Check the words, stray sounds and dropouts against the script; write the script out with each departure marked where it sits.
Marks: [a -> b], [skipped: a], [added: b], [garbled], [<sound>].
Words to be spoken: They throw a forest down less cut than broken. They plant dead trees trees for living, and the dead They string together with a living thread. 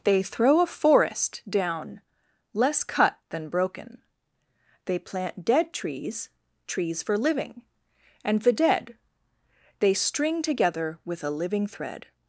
They throw a forest down less cut than broken. They plant dead trees trees for living, and the dead They string together with a living thread.